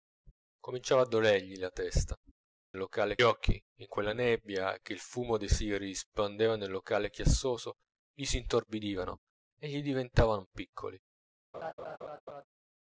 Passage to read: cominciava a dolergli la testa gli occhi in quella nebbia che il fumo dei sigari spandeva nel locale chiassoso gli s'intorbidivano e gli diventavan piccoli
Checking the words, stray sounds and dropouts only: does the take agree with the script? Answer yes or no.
no